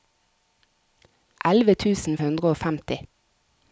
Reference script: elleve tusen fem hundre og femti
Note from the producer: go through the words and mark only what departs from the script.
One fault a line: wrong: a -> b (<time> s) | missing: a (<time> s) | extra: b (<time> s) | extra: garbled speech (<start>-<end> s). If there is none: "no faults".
missing: fem (2.2 s)